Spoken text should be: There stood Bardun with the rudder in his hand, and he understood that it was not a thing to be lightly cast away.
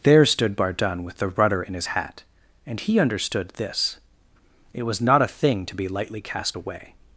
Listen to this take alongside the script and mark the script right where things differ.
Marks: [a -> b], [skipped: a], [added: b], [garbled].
There stood Bardun with the rudder in his [hand, -> hat] and he understood [that -> this] it was not a thing to be lightly cast away.